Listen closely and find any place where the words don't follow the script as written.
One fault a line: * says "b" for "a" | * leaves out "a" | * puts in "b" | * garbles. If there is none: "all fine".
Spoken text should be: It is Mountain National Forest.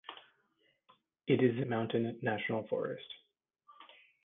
all fine